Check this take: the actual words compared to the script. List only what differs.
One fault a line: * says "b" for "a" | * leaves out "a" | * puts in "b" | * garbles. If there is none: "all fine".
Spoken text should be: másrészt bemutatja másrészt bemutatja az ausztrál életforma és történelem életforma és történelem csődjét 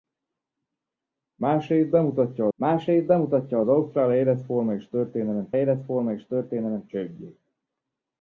all fine